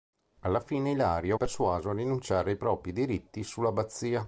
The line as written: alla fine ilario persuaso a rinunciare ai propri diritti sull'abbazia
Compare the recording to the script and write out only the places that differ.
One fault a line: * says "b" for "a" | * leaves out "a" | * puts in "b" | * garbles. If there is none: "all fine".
all fine